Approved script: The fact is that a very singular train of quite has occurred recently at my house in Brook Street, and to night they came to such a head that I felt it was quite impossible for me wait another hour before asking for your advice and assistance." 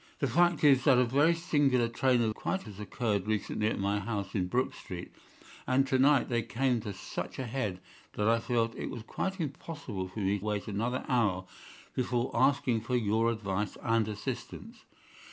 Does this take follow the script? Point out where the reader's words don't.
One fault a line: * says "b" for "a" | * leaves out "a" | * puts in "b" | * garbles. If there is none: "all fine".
all fine